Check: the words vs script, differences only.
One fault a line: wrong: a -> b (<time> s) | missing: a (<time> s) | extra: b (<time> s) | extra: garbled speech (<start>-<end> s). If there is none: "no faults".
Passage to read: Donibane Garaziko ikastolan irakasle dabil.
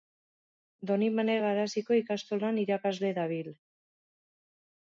no faults